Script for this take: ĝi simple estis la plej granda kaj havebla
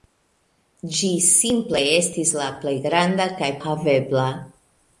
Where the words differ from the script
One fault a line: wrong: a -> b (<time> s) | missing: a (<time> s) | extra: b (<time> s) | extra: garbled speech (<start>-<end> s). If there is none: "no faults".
no faults